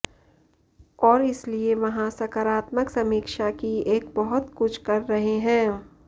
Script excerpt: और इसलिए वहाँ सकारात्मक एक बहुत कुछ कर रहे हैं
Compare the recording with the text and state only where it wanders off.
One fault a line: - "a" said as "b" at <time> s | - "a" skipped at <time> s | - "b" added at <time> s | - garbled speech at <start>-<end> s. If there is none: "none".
- "समीक्षा की" added at 2.9 s